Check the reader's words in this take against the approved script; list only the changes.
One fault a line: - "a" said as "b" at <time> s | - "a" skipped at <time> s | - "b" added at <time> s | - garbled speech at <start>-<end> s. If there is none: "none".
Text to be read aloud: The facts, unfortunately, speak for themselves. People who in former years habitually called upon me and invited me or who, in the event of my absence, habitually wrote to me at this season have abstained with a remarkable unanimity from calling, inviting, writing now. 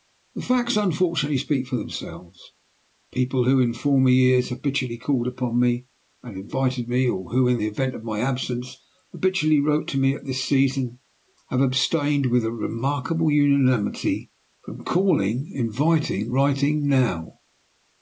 none